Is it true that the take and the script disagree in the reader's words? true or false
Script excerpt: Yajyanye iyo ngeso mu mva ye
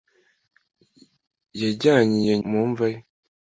true